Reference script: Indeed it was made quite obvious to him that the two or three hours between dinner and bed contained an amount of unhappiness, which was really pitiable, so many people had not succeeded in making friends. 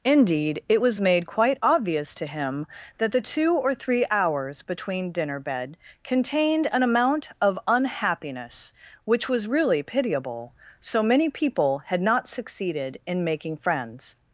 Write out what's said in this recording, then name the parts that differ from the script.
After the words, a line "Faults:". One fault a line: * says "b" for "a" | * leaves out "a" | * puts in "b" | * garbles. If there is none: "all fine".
Indeed it was made quite obvious to him that the two or three hours between dinner bed contained an amount of unhappiness, which was really pitiable, so many people had not succeeded in making friends.
Faults:
* leaves out "and"